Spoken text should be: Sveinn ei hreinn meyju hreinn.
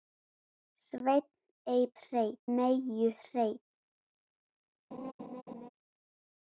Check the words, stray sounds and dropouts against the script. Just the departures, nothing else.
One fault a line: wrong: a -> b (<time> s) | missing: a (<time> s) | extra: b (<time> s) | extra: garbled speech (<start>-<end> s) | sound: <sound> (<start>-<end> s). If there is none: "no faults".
sound: laugh (4.9-5.7 s)